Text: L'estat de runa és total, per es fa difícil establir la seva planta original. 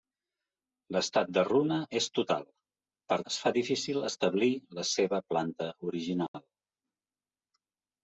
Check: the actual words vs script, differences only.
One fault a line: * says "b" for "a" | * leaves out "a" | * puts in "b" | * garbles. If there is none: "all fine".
all fine